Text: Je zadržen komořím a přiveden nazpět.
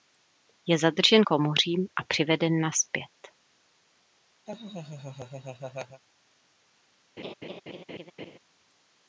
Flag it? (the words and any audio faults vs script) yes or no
yes